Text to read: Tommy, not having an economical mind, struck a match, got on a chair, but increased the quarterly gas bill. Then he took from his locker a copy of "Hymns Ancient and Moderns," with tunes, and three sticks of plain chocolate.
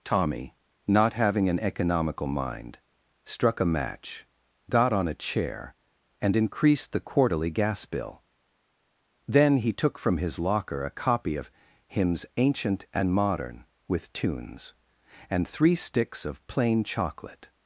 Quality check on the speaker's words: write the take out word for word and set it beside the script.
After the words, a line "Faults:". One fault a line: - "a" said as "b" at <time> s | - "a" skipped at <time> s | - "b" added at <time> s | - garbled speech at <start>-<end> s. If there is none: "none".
Tommy, not having an economical mind, struck a match, got on a chair, and increased the quarterly gas bill. Then he took from his locker a copy of "Hymns Ancient and Modern," with tunes, and three sticks of plain chocolate.
Faults:
- "but" said as "and" at 6.2 s
- "Moderns" said as "Modern" at 13.1 s